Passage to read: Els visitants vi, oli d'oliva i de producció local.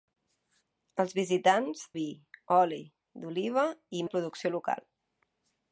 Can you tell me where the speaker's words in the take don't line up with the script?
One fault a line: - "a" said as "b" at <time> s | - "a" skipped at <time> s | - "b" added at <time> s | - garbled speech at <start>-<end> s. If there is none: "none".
none